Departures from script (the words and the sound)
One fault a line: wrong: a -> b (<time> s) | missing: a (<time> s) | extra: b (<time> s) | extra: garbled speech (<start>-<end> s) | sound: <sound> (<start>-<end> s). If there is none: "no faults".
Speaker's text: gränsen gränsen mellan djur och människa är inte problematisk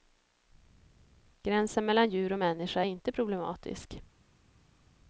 missing: gränsen (1.9 s)